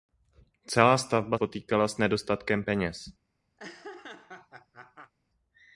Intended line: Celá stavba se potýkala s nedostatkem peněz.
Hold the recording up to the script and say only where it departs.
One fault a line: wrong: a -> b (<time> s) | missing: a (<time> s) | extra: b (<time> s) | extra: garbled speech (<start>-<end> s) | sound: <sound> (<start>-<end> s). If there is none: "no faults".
missing: se (1.4 s)
sound: laugh (3.6-5.1 s)